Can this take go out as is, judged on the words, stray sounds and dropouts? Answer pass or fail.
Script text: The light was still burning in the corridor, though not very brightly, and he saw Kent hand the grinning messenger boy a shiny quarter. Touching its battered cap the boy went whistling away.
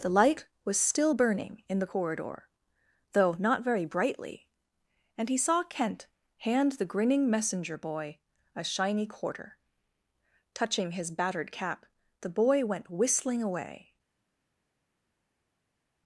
fail